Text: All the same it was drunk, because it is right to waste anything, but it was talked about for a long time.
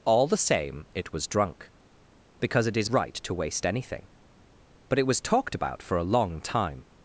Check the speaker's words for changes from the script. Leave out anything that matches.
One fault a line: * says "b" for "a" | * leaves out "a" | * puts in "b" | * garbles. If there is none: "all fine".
all fine